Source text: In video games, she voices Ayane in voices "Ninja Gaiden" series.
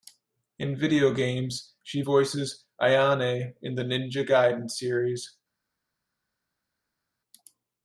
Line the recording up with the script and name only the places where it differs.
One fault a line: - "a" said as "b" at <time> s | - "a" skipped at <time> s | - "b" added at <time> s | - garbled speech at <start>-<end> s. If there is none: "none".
- "voices" said as "the" at 3.7 s